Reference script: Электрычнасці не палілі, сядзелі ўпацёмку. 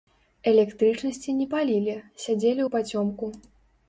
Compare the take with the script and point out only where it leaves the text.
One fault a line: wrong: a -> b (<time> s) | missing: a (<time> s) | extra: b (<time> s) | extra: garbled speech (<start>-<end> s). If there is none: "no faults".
no faults